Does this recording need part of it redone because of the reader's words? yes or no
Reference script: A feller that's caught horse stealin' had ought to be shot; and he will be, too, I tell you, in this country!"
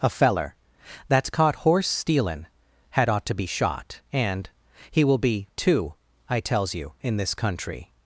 yes